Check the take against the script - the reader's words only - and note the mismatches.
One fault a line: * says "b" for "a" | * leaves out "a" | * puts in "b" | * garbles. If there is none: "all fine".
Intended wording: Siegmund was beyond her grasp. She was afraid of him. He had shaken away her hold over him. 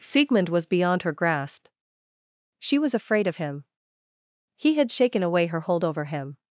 all fine